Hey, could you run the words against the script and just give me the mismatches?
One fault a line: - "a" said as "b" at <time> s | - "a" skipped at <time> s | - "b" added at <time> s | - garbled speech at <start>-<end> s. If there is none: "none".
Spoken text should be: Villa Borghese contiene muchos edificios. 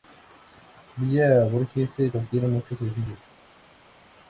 none